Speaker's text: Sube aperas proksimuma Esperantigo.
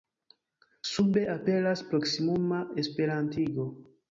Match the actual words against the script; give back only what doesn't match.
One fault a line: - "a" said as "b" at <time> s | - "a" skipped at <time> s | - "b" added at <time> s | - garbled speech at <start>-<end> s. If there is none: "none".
none